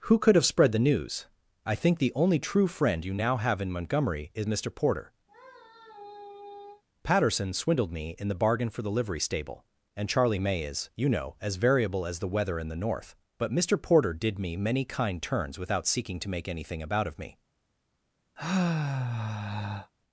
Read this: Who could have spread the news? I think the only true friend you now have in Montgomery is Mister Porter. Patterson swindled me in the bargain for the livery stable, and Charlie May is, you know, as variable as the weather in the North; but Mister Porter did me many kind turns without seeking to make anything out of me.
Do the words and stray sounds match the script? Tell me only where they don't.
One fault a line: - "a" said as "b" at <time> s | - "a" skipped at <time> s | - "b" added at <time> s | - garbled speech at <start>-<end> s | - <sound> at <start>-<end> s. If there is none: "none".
- sigh at 5.3-6.8 s
- "out" said as "about" at 16.8 s
- sigh at 18.4-19.9 s